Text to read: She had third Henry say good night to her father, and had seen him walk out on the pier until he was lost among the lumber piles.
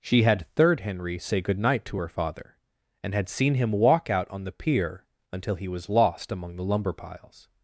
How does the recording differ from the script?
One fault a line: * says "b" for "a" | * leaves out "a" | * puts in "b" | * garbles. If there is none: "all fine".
all fine